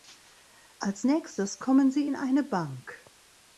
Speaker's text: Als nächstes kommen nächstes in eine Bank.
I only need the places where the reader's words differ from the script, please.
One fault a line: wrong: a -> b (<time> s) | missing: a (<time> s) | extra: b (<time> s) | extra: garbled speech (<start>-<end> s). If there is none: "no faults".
wrong: nächstes -> sie (1.9 s)